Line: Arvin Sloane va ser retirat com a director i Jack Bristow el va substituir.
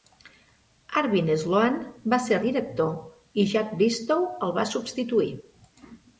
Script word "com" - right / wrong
wrong